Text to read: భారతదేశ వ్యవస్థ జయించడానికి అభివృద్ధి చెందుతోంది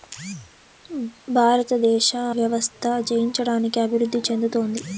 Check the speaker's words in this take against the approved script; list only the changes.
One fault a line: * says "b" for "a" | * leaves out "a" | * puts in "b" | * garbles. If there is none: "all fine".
all fine